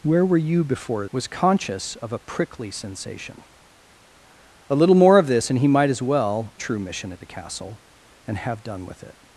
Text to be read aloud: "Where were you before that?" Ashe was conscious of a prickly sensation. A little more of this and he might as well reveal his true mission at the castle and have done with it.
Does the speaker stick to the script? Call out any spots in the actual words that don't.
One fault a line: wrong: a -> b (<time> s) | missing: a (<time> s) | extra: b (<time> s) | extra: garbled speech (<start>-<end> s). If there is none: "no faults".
missing: that Ashe (1.1 s)
missing: reveal his (6.5 s)